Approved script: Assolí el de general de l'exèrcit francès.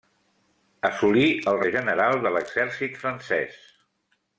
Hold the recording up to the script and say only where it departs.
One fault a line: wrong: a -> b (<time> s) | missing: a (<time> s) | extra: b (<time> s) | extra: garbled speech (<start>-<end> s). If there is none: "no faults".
no faults